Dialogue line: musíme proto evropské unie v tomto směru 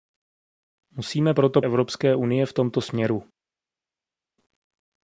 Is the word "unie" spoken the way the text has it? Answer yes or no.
yes